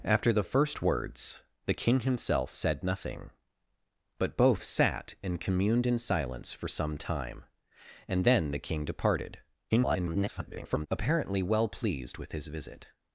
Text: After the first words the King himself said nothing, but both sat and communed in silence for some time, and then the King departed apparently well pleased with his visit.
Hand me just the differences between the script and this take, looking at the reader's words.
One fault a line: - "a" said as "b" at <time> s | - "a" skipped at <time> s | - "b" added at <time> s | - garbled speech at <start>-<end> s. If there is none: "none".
- garbled speech at 9.7-10.9 s